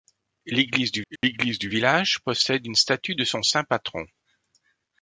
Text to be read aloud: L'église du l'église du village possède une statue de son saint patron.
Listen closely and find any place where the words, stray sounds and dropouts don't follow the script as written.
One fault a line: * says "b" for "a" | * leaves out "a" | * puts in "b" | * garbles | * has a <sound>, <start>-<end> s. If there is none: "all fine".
* has a dropout, 1.2-1.2 s